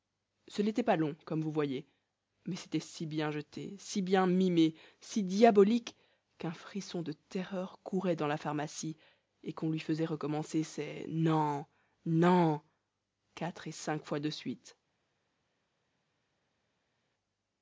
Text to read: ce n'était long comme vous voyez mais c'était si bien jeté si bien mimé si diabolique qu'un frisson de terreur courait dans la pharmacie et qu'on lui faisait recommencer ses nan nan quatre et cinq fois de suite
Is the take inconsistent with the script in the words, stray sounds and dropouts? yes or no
yes